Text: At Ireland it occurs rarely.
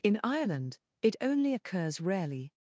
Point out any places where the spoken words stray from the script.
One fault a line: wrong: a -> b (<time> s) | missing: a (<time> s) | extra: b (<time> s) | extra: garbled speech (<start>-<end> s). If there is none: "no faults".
wrong: At -> In (0.0 s)
extra: only (1.2 s)